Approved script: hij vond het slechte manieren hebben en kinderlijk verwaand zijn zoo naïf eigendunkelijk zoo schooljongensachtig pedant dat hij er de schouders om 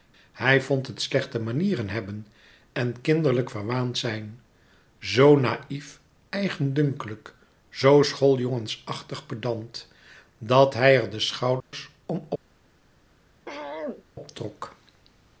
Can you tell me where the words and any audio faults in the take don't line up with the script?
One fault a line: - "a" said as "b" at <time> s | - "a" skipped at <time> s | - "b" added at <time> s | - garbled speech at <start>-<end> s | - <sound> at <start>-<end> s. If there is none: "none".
- dropout at 11.6-11.7 s
- throat clearing at 13.5-14.0 s